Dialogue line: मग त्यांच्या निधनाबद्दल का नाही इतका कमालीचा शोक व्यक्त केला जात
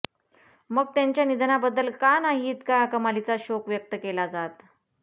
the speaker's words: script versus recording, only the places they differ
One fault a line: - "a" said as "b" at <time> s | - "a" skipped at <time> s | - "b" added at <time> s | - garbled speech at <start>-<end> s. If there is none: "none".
none